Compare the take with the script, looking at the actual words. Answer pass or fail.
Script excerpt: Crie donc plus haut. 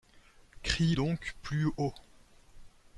pass